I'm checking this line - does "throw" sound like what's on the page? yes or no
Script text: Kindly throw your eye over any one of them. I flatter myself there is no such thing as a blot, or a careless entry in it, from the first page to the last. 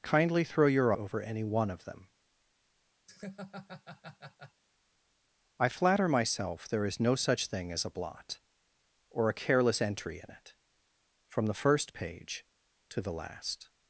yes